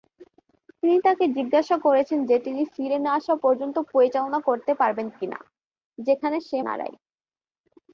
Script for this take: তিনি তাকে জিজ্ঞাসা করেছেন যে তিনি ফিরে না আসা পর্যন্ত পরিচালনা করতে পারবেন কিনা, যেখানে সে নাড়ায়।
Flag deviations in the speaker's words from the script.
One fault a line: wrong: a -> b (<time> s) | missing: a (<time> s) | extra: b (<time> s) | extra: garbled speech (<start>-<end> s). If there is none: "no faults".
no faults